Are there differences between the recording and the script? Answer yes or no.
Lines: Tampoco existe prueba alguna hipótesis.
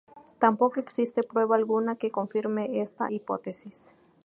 yes